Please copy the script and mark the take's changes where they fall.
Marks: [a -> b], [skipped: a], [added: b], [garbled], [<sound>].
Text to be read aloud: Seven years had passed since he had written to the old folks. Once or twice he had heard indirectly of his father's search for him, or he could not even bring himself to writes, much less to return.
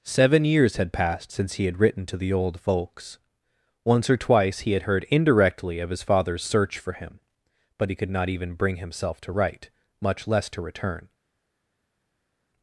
Seven years had passed since he had written to the old folks. Once or twice he had heard indirectly of his father's search for him, [or -> but] he could not even bring himself to [writes, -> write] much less to return.